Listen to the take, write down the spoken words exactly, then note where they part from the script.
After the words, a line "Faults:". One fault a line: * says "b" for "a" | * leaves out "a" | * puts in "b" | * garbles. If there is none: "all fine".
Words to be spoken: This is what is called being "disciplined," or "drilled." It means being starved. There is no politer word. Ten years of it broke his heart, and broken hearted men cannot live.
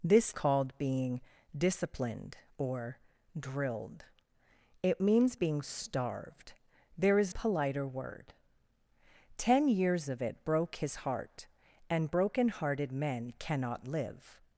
This called being "disciplined," or "drilled." It means being starved. There is politer word. Ten years of it broke his heart, and broken hearted men cannot live.
Faults:
* leaves out "is what is"
* leaves out "no"